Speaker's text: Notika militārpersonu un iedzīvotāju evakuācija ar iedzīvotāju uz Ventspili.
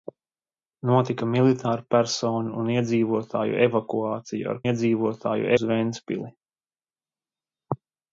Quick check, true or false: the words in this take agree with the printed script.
true